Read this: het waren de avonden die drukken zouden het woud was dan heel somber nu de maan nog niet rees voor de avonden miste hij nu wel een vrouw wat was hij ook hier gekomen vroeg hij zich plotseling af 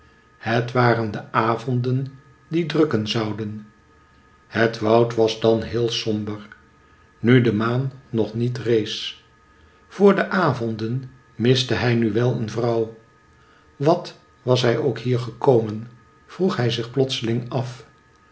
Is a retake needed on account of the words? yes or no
no